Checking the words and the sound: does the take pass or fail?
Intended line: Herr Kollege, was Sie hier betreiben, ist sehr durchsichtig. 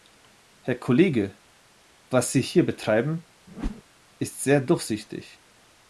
fail